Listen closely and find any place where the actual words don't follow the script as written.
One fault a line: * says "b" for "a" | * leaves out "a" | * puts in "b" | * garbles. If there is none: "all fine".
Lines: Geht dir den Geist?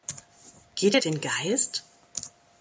all fine